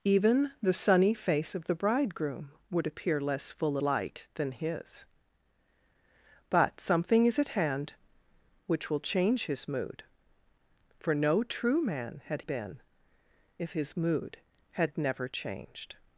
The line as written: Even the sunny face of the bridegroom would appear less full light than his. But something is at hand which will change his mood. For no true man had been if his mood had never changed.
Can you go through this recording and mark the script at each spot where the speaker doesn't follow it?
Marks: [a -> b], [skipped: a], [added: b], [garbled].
Even the sunny face of the bridegroom would appear less full light than his. But something is at hand which will change his mood. For no true man had been if his mood had never changed.